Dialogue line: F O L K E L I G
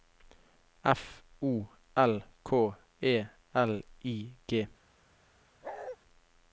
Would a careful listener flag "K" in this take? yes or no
no